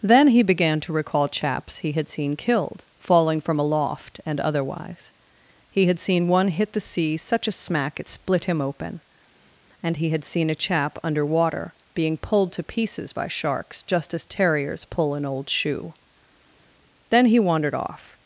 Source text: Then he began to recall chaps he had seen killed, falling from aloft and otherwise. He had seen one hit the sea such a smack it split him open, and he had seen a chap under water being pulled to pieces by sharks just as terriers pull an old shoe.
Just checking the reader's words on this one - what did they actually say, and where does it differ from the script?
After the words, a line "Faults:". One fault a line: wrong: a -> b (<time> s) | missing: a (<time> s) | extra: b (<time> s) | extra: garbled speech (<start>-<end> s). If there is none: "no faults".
Then he began to recall chaps he had seen killed, falling from aloft and otherwise. He had seen one hit the sea such a smack it split him open, and he had seen a chap under water being pulled to pieces by sharks just as terriers pull an old shoe. Then he wandered off
Faults:
extra: Then he wandered off (17.1 s)